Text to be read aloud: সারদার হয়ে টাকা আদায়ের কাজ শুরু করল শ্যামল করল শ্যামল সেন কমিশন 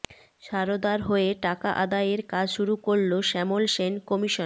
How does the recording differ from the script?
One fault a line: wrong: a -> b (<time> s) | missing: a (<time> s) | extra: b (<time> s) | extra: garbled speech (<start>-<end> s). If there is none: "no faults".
missing: করল শ্যামল (3.6 s)